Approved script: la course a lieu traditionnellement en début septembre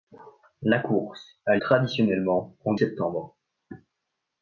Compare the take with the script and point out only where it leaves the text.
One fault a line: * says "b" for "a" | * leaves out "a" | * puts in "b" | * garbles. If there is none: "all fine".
* leaves out "lieu"
* leaves out "début"